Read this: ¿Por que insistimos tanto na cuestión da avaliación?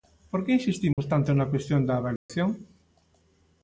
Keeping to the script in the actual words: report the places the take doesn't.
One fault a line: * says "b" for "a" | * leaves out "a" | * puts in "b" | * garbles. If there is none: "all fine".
all fine